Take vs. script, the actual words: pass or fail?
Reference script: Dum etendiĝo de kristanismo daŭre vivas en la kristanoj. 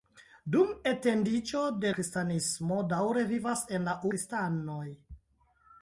pass